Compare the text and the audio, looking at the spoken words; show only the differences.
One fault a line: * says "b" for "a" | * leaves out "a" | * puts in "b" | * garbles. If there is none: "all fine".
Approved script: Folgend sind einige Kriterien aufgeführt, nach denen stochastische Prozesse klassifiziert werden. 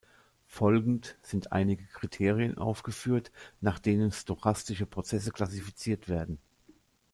all fine